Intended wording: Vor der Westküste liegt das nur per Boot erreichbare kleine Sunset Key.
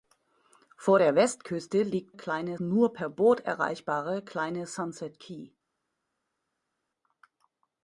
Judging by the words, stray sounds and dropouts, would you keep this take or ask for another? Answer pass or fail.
fail